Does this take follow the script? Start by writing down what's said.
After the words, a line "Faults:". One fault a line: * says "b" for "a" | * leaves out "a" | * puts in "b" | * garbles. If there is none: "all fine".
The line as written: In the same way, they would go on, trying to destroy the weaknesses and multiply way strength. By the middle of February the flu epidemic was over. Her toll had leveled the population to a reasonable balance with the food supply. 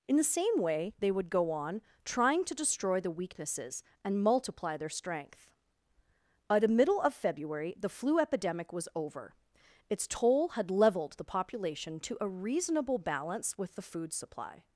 In the same way, they would go on, trying to destroy the weaknesses and multiply their strength. By the middle of February the flu epidemic was over. Its toll had leveled the population to a reasonable balance with the food supply.
Faults:
* says "their" for "way"
* says "Its" for "Her"